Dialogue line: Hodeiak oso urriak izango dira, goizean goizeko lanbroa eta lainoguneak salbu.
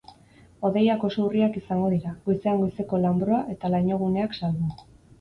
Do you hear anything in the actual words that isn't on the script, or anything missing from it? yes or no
no